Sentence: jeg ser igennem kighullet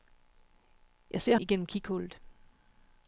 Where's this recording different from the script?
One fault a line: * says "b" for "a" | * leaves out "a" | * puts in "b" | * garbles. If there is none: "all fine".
all fine